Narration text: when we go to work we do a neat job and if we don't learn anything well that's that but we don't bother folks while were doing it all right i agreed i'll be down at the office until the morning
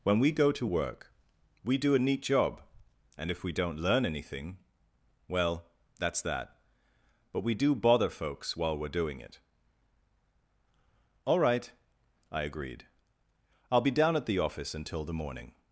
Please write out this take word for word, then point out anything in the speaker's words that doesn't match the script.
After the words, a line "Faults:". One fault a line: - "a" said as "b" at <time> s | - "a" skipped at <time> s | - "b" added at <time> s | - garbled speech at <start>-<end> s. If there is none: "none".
when we go to work we do a neat job and if we don't learn anything well that's that but we do bother folks while were doing it all right i agreed i'll be down at the office until the morning
Faults:
- "don't" said as "do" at 7.5 s